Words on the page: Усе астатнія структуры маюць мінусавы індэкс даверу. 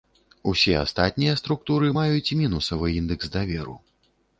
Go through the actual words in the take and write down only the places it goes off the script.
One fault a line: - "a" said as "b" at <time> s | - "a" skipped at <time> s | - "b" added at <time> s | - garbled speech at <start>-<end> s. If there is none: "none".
none